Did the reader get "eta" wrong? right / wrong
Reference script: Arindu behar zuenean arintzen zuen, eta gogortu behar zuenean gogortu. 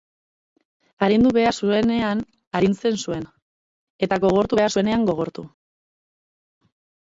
right